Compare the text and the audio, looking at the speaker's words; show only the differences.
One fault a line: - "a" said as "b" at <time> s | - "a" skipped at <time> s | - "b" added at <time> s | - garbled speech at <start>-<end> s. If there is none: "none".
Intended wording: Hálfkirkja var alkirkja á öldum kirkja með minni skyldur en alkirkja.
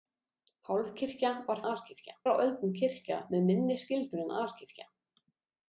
none